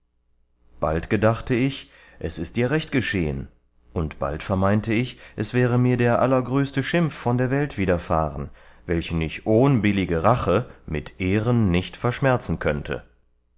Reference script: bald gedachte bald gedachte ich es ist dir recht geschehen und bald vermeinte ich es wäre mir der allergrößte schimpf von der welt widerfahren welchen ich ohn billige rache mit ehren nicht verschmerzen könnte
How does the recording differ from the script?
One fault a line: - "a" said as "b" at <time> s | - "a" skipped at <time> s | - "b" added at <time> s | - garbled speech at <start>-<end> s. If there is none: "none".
- "bald gedachte" skipped at 1.5 s